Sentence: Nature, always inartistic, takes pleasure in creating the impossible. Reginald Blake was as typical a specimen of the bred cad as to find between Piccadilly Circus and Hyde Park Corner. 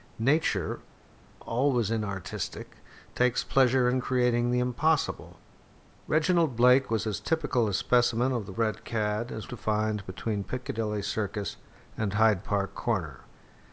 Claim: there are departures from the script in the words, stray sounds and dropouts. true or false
false